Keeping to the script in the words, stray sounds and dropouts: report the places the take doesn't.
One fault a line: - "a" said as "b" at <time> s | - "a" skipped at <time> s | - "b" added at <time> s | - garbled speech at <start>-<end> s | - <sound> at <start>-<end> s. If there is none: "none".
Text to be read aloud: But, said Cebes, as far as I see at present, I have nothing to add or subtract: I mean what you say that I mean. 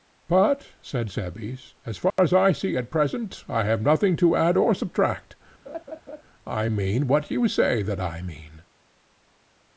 - dropout at 2.1-2.2 s
- laugh at 5.7-6.2 s